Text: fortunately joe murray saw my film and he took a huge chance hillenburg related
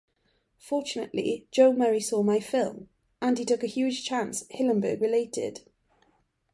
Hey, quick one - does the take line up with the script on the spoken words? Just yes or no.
yes